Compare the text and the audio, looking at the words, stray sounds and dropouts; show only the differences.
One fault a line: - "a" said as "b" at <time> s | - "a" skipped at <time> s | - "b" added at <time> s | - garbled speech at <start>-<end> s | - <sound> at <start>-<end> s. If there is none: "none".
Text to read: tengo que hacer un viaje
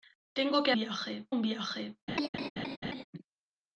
- "hacer" said as "viaje" at 0.7 s
- laugh at 2.1-3.0 s